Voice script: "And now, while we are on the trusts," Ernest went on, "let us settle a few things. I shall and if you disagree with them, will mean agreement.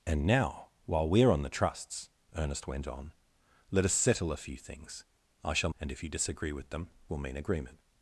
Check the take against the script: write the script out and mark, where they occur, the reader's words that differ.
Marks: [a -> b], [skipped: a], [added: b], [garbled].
"And now, while we are on the trusts," Ernest went on, "let us settle a few things. I shall and if you disagree with them, will mean agreement.